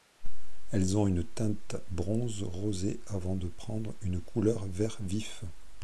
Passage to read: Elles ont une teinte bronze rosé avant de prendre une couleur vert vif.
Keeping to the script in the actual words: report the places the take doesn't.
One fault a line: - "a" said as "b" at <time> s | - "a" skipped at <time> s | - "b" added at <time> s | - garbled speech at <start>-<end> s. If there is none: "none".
none